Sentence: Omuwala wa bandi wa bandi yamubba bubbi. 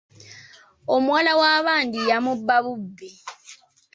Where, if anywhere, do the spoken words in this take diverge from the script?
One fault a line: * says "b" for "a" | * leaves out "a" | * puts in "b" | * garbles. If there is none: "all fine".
* leaves out "wa bandi"